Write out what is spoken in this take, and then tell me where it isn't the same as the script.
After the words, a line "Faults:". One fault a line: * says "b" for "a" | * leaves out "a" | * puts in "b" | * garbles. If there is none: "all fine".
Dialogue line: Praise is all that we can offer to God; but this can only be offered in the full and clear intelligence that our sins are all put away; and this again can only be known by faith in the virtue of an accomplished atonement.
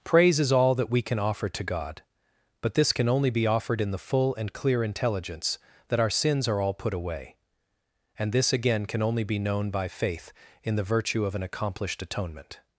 Praise is all that we can offer to God; but this can only be offered in the full and clear intelligence that our sins are all put away; and this again can only be known by faith in the virtue of an accomplished atonement.
Faults:
all fine